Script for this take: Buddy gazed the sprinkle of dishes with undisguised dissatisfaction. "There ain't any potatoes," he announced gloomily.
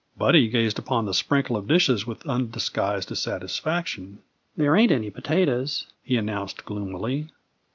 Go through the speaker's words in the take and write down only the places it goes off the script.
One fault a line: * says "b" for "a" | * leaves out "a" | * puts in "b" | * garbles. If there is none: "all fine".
* puts in "upon"